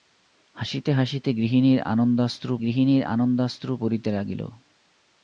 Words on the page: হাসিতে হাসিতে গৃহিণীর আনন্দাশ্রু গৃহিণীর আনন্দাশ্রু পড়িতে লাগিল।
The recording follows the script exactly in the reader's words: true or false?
true